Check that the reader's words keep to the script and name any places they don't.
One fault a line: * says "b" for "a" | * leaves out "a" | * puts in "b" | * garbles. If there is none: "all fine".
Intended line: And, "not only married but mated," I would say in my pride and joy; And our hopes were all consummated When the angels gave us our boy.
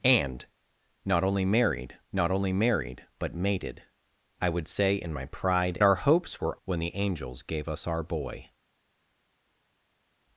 * puts in "not only married"
* leaves out "and joy And"
* leaves out "all consummated"